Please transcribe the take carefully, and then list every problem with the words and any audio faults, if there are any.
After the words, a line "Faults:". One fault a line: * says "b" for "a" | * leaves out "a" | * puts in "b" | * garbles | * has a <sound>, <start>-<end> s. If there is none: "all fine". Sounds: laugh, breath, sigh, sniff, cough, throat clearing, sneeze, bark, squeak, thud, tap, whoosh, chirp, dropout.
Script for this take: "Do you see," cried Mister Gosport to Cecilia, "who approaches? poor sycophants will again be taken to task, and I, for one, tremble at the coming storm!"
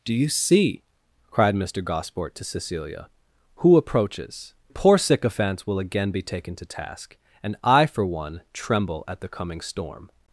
"Do you see," cried Mister Gosport to Cecilia, "who approaches? poor sycophants will again be taken to task, and I, for one, tremble at the coming storm!"
Faults:
all fine